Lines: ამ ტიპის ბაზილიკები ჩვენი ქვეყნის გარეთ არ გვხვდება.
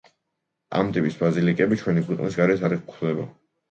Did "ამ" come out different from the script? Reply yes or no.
no